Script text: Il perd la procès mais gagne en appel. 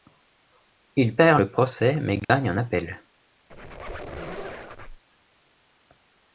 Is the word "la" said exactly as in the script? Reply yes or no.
no